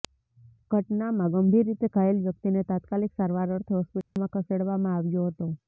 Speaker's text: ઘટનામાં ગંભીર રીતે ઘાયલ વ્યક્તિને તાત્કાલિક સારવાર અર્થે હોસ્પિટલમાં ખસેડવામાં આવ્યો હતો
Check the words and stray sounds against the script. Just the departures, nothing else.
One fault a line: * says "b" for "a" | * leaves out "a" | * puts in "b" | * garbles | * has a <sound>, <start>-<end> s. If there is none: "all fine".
* has a dropout, 4.0-4.2 s